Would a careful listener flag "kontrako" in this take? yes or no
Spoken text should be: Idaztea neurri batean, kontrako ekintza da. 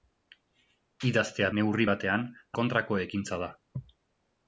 no